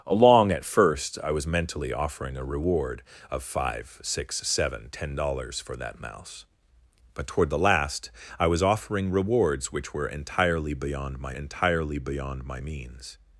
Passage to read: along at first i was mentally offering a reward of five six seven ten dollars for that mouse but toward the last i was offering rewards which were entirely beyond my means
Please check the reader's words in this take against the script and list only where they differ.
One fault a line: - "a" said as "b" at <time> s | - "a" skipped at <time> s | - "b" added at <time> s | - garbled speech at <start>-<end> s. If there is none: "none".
- "entirely beyond my" added at 11.3 s